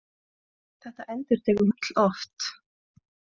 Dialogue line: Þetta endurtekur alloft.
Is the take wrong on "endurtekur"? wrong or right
right